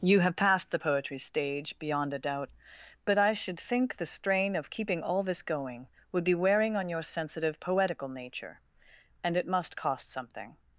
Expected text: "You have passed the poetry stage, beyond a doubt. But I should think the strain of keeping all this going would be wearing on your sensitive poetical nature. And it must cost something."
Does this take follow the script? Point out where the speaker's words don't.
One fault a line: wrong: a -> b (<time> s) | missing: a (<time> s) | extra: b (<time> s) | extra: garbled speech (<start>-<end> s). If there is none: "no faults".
no faults